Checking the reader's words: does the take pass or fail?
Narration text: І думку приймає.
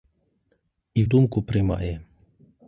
pass